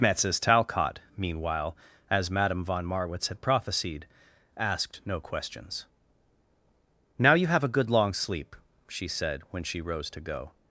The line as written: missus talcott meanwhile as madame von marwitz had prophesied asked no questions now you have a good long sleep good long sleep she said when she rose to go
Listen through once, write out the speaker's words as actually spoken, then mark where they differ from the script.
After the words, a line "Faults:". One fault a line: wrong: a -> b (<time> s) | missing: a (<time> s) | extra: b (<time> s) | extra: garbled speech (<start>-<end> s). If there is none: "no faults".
missus talcott meanwhile as madame von marwitz had prophesied asked no questions now you have a good long sleep she said when she rose to go
Faults:
missing: good long sleep (8.6 s)